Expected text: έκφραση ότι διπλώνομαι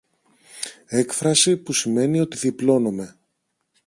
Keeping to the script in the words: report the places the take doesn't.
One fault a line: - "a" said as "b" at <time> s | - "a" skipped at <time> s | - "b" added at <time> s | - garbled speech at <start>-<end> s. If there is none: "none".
- "που σημαίνει" added at 1.6 s